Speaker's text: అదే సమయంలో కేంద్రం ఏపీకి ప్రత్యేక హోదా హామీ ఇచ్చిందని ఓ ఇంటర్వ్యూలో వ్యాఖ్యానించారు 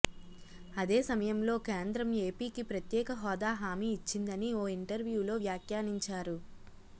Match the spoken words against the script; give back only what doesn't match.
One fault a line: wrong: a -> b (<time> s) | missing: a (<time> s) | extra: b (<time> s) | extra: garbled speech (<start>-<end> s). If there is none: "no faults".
no faults